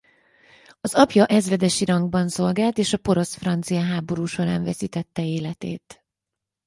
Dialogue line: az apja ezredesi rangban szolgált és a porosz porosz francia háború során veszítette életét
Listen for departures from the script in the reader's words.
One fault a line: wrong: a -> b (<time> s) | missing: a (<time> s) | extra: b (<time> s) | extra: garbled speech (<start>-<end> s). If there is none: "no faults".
missing: porosz (3.3 s)